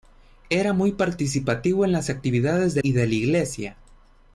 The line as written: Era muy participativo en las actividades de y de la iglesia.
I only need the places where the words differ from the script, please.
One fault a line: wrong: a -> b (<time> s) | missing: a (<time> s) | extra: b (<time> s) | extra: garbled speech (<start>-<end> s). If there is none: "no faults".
no faults